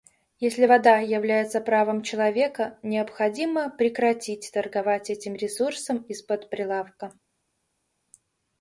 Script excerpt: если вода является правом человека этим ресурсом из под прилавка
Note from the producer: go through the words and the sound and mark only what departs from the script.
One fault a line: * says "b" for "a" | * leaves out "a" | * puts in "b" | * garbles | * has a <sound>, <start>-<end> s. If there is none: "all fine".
* puts in "необходимо прекратить торговать"